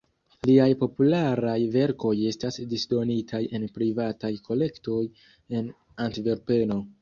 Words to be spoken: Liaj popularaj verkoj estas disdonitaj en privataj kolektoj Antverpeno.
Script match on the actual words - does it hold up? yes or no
no